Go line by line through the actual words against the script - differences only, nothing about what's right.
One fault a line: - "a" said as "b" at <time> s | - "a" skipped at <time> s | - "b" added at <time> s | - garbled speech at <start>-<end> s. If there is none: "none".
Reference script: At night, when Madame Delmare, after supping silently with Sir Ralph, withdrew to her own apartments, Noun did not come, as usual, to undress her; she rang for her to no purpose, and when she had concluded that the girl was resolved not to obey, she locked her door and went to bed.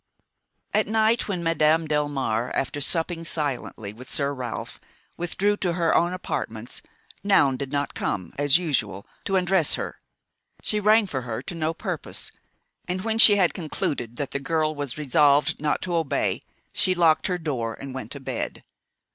none